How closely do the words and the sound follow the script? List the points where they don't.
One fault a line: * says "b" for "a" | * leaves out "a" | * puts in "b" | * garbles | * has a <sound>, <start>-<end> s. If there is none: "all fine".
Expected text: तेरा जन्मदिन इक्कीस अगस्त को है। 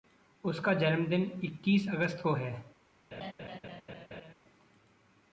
* says "उसका" for "तेरा"
* has a laugh, 3.1-4.3 s